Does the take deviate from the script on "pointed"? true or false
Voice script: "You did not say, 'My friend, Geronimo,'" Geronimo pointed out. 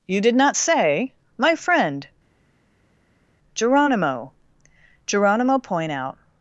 true